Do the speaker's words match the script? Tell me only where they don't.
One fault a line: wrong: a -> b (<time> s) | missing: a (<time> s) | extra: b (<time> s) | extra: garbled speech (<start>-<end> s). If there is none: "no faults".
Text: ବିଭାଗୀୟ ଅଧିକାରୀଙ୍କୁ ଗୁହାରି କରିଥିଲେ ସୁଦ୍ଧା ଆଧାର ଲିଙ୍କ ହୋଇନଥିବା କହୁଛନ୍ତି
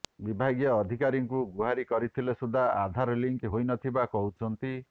no faults